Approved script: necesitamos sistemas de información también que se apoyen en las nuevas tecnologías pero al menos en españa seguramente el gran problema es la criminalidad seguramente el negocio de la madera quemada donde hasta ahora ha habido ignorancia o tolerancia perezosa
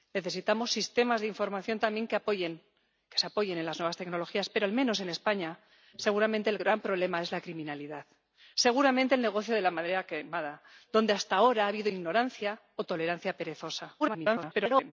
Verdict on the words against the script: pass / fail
fail